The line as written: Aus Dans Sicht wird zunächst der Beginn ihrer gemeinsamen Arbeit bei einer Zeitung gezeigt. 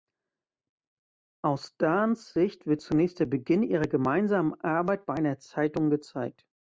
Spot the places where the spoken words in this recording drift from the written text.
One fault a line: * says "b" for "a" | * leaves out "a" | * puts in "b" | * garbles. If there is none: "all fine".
all fine